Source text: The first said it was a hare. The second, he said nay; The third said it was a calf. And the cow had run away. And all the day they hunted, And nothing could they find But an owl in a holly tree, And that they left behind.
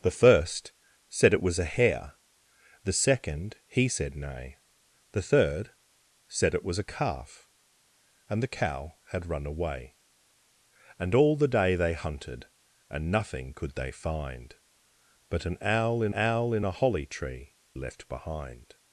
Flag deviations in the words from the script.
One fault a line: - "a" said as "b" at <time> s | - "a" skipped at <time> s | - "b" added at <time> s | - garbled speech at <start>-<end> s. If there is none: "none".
- "owl in" added at 16.1 s
- "And that they" skipped at 17.6 s